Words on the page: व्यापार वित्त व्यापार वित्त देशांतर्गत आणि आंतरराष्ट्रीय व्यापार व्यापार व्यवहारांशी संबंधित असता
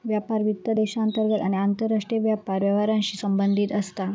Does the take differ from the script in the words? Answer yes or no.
yes